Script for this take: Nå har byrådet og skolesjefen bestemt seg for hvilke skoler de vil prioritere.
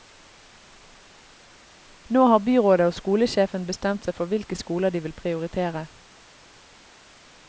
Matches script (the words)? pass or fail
pass